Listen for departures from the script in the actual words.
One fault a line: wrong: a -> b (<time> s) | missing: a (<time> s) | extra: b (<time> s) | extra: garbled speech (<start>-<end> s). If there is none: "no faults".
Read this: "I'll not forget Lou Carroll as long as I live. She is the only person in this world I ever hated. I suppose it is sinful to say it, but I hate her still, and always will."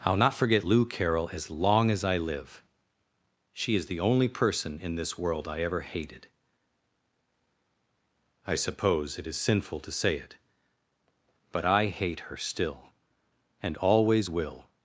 no faults